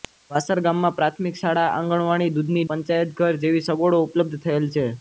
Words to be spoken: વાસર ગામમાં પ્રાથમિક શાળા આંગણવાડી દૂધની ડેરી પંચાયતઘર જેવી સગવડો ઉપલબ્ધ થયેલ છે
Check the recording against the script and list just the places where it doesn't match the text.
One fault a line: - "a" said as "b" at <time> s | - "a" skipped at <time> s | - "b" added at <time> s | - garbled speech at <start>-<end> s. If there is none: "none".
- "ડેરી" skipped at 2.6 s